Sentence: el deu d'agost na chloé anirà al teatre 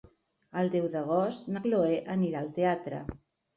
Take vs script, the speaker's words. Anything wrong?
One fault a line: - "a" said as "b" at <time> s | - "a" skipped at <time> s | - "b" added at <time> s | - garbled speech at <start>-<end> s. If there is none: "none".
none